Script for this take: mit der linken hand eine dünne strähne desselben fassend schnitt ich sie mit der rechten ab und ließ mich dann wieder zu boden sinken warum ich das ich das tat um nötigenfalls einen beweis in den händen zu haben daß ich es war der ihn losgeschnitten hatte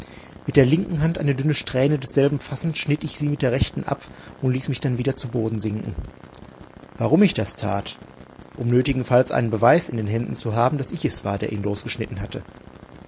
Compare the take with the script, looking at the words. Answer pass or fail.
fail